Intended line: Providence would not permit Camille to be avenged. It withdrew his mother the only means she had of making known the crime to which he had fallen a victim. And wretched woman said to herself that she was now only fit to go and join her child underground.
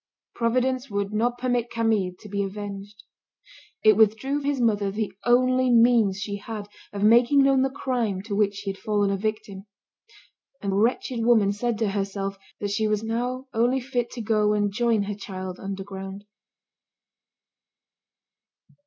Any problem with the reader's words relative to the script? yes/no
no